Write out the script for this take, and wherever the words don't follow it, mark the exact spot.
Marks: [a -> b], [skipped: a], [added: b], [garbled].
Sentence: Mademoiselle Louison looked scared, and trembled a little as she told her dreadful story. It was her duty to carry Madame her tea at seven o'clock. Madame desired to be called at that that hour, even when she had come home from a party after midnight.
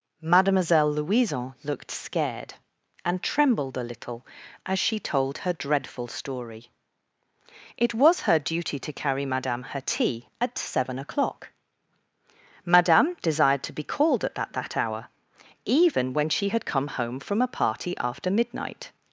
Mademoiselle Louison looked scared, and trembled a little as she told her dreadful story. It was her duty to carry Madame her tea at seven o'clock. Madame desired to be called at that that hour, even when she had come home from a party after midnight.